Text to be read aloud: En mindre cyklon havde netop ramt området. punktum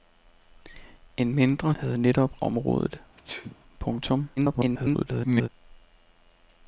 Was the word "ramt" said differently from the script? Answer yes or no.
yes